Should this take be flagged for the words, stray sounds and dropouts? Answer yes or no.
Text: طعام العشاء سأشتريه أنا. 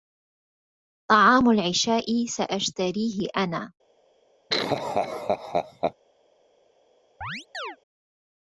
yes